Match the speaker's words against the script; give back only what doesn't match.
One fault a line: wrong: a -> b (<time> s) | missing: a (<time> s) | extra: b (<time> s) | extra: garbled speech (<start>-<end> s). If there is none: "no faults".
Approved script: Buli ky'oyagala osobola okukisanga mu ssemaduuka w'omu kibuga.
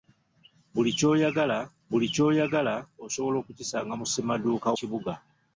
extra: buli ky'oyagala (1.9 s)
missing: w'omu (4.7 s)